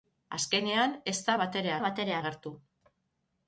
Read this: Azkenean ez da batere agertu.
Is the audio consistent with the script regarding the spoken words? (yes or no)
no